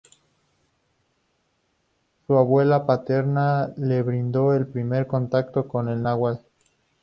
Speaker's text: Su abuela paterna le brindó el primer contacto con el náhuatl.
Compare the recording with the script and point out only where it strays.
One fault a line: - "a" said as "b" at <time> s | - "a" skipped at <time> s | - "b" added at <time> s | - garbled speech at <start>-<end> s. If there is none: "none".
none